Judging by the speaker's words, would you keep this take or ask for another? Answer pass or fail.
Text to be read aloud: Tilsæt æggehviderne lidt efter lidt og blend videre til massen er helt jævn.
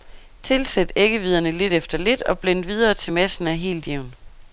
pass